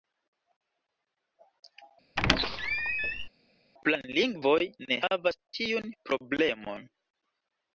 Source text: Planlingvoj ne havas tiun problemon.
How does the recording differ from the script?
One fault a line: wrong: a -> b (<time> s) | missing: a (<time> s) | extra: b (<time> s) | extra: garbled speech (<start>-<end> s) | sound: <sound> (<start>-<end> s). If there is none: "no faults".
sound: squeak (2.2-3.3 s)